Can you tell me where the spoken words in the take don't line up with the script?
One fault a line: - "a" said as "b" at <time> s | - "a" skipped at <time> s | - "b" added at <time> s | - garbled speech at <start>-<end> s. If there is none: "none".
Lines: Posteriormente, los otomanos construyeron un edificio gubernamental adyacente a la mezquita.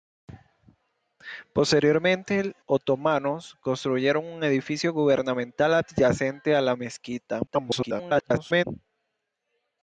- "los" skipped at 2.5 s
- garbled speech at 7.5-8.6 s